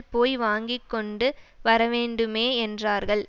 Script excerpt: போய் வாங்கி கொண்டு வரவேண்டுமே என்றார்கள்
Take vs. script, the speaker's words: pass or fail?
pass